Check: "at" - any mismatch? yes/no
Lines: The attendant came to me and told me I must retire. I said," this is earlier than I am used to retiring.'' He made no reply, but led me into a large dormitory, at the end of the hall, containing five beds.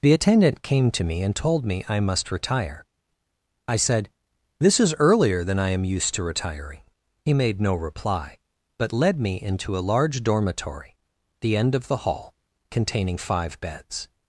yes